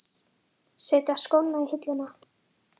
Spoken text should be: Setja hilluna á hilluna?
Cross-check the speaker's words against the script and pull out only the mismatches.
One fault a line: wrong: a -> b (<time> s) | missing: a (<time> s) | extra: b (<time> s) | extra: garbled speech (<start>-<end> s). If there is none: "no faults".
wrong: hilluna -> skóna (1.2 s)